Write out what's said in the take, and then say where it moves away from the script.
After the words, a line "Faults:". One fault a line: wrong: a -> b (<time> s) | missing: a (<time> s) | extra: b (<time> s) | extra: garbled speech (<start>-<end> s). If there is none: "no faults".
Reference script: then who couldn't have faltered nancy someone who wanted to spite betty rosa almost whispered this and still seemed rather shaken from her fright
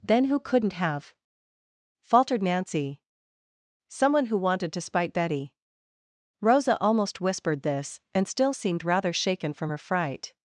then who couldn't have faltered nancy someone who wanted to spite betty rosa almost whispered this and still seemed rather shaken from her fright
Faults:
no faults